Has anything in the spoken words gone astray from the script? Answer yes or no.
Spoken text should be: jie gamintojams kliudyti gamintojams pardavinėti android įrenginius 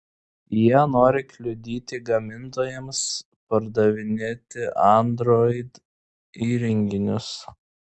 yes